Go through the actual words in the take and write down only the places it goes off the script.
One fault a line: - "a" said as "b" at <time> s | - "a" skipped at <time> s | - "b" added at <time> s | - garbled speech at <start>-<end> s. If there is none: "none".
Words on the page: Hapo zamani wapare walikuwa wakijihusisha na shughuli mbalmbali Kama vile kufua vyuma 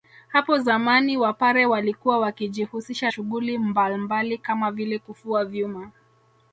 - "na" skipped at 3.1 s